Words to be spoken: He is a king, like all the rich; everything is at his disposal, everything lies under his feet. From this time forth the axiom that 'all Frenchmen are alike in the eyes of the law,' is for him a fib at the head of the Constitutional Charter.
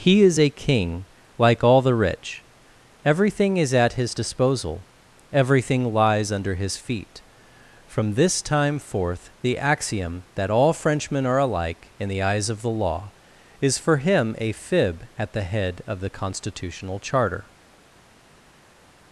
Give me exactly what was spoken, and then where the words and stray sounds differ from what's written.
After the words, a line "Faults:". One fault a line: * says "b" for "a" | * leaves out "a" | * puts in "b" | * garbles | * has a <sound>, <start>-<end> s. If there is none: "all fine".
He is a king, like all the rich; everything is at his disposal, everything lies under his feet. From this time forth the axiom that 'all Frenchmen are alike in the eyes of the law,' is for him a fib at the head of the Constitutional Charter.
Faults:
all fine